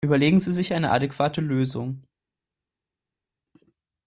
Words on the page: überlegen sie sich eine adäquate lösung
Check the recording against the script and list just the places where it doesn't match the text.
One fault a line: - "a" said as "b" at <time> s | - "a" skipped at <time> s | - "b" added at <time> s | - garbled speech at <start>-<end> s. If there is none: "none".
none